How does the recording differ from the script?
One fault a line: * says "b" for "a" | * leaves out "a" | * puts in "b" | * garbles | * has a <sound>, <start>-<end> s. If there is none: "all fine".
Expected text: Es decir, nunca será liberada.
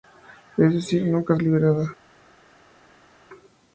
* leaves out "será"